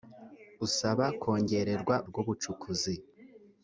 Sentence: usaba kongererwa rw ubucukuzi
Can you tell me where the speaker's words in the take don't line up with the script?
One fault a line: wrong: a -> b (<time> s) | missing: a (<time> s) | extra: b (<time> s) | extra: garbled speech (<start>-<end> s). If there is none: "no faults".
no faults